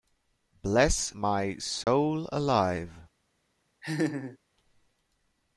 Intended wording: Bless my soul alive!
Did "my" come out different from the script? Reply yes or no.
no